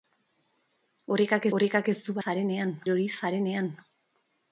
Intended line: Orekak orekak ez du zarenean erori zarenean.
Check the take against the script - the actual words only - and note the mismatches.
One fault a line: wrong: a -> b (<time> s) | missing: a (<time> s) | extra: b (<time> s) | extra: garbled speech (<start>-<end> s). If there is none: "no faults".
no faults